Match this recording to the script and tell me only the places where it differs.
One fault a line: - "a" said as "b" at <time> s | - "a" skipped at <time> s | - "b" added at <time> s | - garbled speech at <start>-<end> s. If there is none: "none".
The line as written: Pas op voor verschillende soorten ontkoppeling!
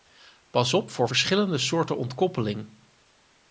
none